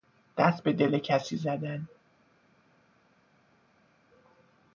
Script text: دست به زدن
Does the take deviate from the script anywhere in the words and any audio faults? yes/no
yes